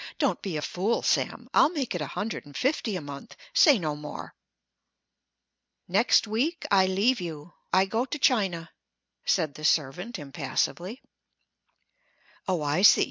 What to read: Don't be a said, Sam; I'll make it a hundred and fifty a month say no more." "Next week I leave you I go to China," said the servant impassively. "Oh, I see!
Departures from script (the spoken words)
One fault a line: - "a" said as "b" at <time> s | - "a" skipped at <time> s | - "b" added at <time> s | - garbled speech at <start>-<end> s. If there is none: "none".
- "said" said as "fool" at 0.6 s